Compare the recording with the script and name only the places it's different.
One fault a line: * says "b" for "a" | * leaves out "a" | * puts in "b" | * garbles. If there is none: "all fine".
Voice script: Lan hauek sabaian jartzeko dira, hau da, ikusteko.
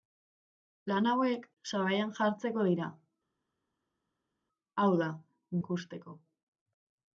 all fine